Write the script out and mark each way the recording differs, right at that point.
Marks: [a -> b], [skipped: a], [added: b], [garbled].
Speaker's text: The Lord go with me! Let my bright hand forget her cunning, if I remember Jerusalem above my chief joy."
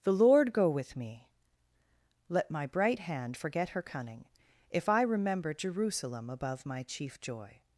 The Lord go with me! Let my bright hand forget her cunning, if I remember Jerusalem above my chief joy."